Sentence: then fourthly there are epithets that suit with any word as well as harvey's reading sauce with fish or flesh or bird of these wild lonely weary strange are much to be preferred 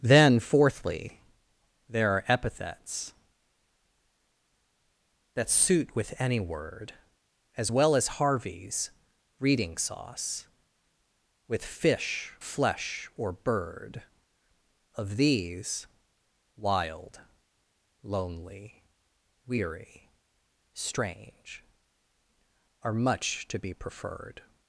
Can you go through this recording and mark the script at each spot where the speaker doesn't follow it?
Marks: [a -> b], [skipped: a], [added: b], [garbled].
then fourthly there are epithets that suit with any word as well as harvey's reading sauce with fish [skipped: or] flesh or bird of these wild lonely weary strange are much to be preferred